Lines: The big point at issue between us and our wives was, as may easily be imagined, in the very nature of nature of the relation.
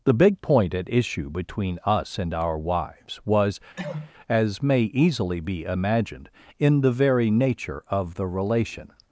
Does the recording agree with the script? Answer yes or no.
no